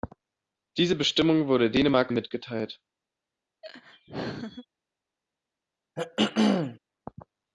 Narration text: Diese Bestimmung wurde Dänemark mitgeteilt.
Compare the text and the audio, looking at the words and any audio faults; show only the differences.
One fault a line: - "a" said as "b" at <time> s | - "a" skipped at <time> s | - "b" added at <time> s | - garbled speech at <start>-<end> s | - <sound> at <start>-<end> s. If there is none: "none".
- laugh at 3.6-4.7 s
- throat clearing at 6.0-6.8 s